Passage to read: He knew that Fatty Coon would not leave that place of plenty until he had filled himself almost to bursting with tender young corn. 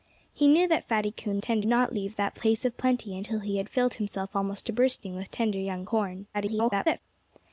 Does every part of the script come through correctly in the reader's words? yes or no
no